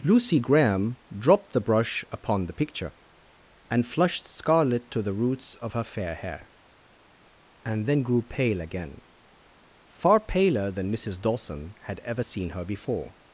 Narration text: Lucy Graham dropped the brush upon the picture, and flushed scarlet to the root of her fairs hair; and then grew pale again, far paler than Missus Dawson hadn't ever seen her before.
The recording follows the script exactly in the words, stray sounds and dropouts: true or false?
false